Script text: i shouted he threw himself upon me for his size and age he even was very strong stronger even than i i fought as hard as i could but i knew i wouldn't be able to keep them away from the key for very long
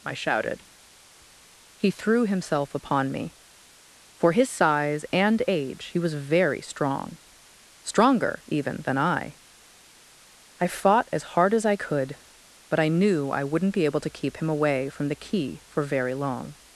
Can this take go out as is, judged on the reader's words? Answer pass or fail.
fail